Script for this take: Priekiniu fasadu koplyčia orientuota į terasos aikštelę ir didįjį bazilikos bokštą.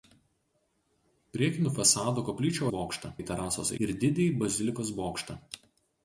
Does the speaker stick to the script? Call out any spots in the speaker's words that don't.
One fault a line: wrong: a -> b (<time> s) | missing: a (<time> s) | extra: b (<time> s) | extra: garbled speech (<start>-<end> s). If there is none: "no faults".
wrong: orientuota -> bokštą (2.8 s)
missing: aikštelę (3.7 s)